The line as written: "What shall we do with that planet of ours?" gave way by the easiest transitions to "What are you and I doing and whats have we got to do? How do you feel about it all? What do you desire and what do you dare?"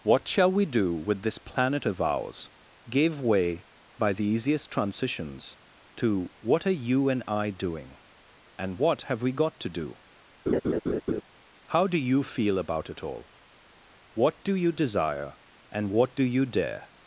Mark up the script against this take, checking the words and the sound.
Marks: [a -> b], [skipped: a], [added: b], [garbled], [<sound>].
"What shall we do with [that -> this] planet of ours?" gave way by the easiest transitions to "What are you and I doing and [whats -> what] have we got to do? [laugh] How do you feel about it all? What do you desire and what do you dare?"